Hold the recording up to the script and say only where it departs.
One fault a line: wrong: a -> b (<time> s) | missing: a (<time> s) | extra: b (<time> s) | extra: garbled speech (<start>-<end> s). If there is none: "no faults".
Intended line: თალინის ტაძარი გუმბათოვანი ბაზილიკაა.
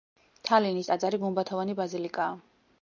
no faults